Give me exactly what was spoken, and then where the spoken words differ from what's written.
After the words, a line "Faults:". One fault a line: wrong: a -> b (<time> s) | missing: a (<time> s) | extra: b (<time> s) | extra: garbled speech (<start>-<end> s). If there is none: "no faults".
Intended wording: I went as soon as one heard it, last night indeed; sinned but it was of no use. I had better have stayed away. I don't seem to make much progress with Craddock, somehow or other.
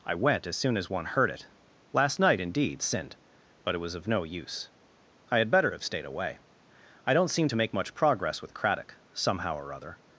I went as soon as one heard it, last night indeed; sinned but it was of no use. I had better have stayed away. I don't seem to make much progress with Craddock, somehow or other.
Faults:
no faults